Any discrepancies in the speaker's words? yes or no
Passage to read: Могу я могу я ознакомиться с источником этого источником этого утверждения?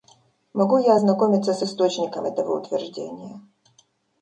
yes